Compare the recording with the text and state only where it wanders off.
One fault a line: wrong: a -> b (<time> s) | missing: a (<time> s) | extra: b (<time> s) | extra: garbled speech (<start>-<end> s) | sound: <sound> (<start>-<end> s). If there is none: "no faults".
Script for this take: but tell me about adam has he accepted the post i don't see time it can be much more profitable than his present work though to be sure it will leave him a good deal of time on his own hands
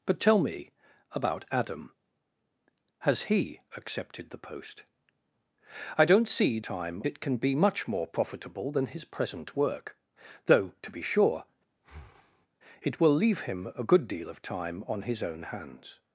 sound: breath (11.8-12.5 s)